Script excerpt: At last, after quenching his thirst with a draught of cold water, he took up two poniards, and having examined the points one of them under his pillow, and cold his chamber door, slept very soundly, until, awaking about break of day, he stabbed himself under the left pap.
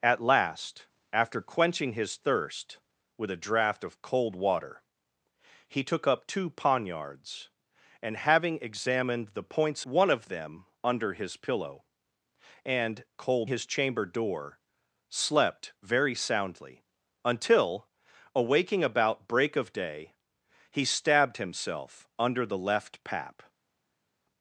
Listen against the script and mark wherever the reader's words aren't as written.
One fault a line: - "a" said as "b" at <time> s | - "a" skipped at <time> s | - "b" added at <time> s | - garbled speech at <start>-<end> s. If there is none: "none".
none